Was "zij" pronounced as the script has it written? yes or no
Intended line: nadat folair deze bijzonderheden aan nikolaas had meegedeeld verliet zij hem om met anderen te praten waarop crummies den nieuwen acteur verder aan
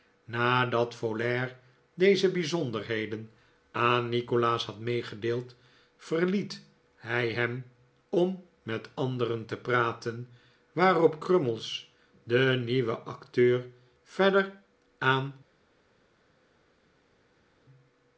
no